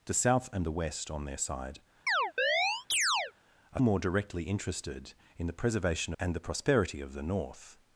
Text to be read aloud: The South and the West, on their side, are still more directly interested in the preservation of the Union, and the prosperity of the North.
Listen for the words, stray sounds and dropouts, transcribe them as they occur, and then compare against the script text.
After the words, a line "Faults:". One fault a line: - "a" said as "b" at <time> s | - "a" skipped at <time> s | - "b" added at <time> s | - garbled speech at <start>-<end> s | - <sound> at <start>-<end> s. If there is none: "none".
The South and the West, on their side, are more directly interested in the preservation and the prosperity of the North.
Faults:
- chirp at 2.1-3.3 s
- "still" skipped at 3.8 s
- "of the Union" skipped at 6.1 s